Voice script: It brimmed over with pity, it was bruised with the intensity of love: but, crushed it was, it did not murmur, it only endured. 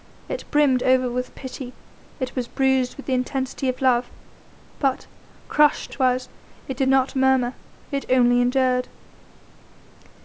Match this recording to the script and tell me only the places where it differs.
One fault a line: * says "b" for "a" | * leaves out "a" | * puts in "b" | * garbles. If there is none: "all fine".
all fine